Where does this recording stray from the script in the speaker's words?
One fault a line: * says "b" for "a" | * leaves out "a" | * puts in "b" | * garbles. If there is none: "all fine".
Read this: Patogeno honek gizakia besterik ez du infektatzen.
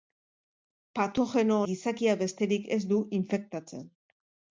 * leaves out "honek"